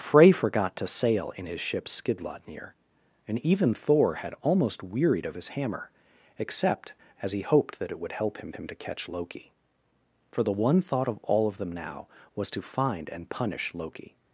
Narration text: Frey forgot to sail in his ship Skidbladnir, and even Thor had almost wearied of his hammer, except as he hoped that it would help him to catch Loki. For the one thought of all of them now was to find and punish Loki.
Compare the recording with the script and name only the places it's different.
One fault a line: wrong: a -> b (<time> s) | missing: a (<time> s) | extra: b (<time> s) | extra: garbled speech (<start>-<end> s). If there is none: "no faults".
extra: him (8.5 s)